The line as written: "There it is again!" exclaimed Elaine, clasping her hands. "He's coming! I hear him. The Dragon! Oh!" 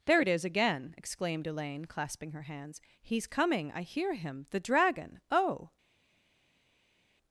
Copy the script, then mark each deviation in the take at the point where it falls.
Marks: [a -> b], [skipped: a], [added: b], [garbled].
"There it is again!" exclaimed Elaine, clasping her hands. "He's coming! I hear him. The Dragon! Oh!"